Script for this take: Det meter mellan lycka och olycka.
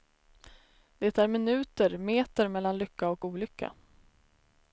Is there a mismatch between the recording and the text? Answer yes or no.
yes